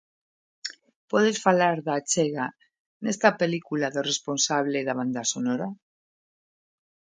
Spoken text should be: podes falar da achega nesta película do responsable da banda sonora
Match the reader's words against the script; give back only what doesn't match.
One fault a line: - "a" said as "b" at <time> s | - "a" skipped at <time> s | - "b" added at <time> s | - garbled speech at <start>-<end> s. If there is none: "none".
none